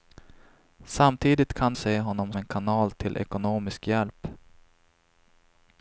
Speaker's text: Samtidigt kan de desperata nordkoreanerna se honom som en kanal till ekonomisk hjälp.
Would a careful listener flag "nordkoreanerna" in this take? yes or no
yes